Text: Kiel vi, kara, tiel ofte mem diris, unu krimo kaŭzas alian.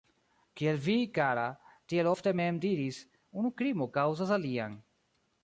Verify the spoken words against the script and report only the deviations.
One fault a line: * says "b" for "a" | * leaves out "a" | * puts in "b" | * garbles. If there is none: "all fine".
all fine